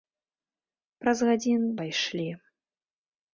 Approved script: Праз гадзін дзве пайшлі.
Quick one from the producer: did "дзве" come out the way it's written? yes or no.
no